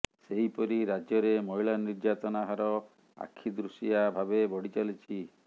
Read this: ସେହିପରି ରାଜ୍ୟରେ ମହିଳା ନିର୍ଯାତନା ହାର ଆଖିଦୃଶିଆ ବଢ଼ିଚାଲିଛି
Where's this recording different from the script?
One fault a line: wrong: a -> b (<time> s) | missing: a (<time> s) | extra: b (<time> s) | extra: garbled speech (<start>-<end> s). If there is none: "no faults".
extra: ଭାବେ (4.2 s)